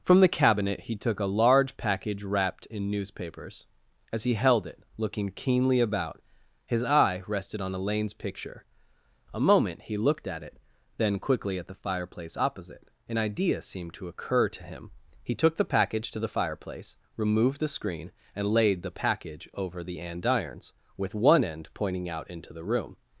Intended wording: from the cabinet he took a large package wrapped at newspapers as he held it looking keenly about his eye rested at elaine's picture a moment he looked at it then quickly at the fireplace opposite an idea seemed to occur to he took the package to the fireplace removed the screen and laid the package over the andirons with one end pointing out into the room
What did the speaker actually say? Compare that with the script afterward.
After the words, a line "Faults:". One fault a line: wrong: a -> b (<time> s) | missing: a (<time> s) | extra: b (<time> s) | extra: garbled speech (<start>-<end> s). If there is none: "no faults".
from the cabinet he took a large package wrapped in newspapers as he held it looking keenly about his eye rested on elaine's picture a moment he looked at it then quickly at the fireplace opposite an idea seemed to occur to him he took the package to the fireplace removed the screen and laid the package over the andirons with one end pointing out into the room
Faults:
wrong: at -> in (2.6 s)
wrong: at -> on (7.6 s)
extra: him (14.6 s)